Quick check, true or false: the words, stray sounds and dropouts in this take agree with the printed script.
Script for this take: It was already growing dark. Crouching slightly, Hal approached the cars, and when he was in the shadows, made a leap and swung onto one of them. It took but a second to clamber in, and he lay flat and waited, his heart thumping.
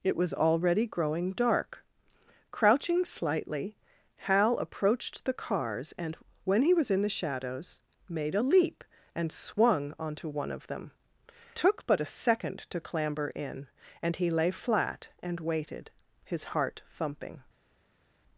false